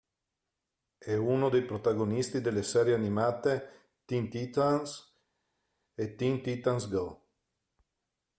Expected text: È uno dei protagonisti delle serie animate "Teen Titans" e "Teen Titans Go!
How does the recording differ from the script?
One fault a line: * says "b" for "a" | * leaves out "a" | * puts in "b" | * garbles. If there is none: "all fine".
all fine